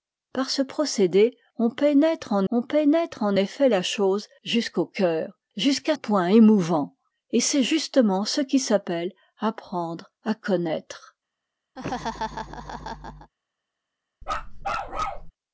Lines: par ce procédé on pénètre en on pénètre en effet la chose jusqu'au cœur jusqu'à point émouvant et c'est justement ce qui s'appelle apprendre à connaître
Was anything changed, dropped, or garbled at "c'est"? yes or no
no